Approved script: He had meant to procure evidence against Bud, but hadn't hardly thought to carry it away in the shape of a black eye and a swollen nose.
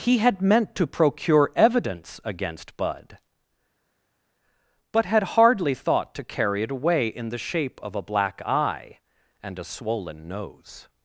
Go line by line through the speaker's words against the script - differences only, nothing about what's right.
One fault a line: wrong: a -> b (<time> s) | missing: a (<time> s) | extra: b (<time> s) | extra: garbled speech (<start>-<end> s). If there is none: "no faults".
wrong: hadn't -> had (5.0 s)